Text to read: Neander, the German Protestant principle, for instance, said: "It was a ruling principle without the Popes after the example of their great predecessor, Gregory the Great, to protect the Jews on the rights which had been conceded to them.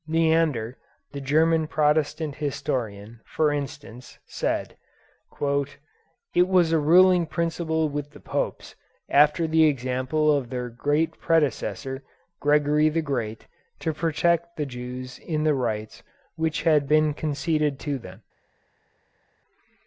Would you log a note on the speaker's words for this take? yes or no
yes